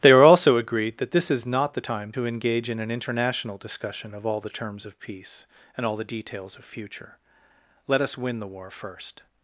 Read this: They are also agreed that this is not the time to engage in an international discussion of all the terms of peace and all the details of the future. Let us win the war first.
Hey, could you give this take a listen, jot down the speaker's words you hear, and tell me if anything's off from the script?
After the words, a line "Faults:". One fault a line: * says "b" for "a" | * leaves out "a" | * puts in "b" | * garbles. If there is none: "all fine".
They are also agreed that this is not the time to engage in an international discussion of all the terms of peace and all the details of future. Let us win the war first.
Faults:
* leaves out "the"